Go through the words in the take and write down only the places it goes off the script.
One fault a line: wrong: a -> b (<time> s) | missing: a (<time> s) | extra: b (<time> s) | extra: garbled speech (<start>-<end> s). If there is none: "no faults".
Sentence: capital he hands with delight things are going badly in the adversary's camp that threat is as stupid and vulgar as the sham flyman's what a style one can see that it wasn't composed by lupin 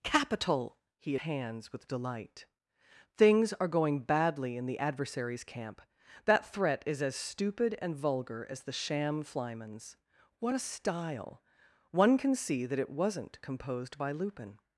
no faults